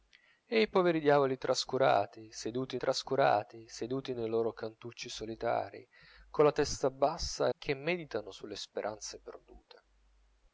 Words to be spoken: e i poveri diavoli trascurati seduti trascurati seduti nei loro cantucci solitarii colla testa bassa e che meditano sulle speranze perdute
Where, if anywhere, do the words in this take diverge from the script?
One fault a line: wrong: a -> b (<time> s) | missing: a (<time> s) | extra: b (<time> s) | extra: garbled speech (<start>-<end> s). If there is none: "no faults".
no faults